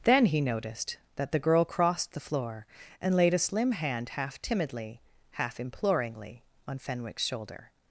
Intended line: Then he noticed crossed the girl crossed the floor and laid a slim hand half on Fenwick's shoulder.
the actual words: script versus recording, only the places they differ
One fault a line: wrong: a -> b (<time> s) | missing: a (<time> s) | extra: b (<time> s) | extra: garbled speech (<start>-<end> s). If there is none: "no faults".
wrong: crossed -> that (1.1 s)
extra: timidly half imploringly (4.4 s)